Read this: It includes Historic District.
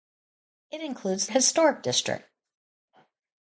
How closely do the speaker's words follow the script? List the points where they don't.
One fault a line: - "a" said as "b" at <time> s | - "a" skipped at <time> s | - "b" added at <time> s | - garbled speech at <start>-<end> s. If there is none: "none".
none